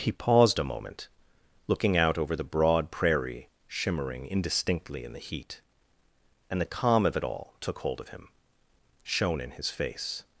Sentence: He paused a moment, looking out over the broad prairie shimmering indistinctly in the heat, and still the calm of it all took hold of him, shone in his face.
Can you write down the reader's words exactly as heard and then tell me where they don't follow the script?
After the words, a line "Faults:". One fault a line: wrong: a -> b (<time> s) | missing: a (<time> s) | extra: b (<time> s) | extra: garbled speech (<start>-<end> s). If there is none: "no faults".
He paused a moment, looking out over the broad prairie shimmering indistinctly in the heat, and the calm of it all took hold of him, shone in his face.
Faults:
missing: still (6.6 s)